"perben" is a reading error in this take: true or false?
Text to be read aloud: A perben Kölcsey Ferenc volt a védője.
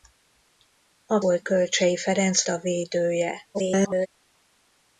true